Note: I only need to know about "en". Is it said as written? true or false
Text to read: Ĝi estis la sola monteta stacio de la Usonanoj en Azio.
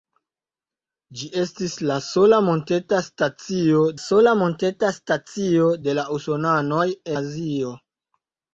false